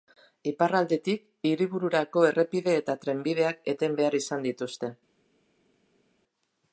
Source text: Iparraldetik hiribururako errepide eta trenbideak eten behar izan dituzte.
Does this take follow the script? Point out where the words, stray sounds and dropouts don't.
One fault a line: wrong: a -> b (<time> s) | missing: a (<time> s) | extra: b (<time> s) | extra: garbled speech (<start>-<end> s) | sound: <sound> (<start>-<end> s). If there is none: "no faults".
no faults